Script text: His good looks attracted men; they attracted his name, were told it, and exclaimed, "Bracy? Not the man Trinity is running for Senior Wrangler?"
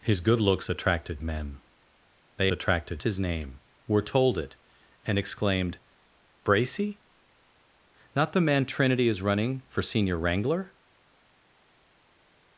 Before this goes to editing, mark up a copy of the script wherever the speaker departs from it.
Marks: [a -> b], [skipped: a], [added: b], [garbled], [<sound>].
His good looks attracted men; they attracted his name, were told it, and exclaimed, "Bracy? Not the man Trinity is running for Senior Wrangler?"